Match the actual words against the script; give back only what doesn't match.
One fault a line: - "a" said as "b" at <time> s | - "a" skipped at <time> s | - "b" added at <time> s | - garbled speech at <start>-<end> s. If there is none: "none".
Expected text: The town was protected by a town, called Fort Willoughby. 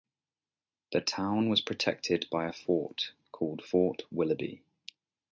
- "town" said as "fort" at 2.5 s